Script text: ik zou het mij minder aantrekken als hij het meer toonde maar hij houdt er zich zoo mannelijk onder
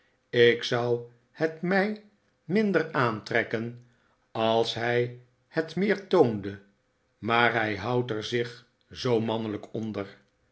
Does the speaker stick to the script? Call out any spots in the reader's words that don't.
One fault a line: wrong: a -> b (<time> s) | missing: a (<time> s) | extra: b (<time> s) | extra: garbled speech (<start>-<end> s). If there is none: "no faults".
no faults